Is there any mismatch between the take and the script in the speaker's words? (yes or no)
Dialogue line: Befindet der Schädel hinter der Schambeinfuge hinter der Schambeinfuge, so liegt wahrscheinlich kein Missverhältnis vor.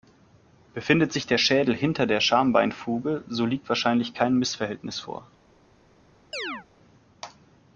yes